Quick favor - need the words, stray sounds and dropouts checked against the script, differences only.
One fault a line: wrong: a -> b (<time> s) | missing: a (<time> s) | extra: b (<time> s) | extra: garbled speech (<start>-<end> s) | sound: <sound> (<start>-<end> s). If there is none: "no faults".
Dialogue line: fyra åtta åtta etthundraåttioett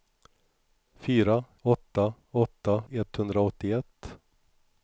no faults